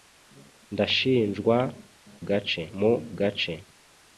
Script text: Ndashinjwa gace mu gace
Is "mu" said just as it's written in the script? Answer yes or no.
yes